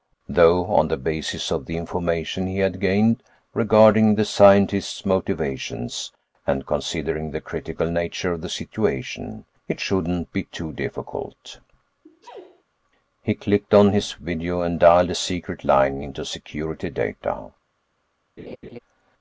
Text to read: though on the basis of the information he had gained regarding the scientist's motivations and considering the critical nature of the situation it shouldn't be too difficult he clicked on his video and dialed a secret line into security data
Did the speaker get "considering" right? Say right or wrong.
right